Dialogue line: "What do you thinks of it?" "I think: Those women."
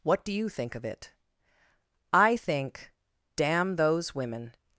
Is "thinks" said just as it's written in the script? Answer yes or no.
no